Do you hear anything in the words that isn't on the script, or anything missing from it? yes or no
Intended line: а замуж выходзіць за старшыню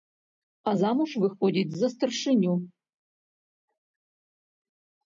no